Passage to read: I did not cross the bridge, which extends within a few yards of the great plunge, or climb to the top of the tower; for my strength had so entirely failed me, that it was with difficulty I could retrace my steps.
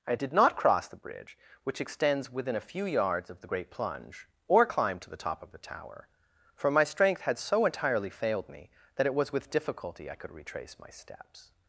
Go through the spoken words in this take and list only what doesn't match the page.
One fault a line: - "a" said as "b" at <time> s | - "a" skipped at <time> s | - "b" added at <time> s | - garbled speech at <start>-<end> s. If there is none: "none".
none